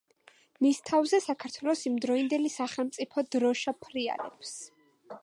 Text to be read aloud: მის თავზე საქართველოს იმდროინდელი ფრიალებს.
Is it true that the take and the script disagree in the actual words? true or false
true